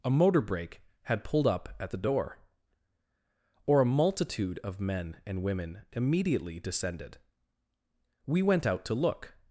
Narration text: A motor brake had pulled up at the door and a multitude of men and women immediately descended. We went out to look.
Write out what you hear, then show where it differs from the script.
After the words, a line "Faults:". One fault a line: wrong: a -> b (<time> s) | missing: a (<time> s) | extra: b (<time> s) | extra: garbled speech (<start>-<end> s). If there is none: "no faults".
A motor brake had pulled up at the door or a multitude of men and women immediately descended. We went out to look.
Faults:
wrong: and -> or (3.7 s)